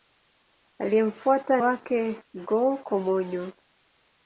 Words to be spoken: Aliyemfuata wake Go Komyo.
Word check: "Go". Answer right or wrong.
right